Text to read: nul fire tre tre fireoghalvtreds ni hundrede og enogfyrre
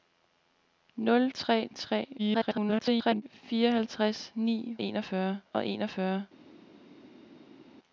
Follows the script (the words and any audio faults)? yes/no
no